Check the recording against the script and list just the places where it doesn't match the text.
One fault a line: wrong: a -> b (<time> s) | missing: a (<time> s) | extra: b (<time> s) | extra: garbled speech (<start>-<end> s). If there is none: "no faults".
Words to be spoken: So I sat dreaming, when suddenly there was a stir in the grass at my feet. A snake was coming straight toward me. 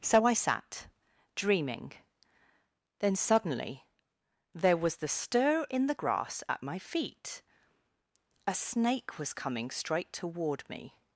wrong: when -> then (3.0 s)
wrong: a -> the (5.0 s)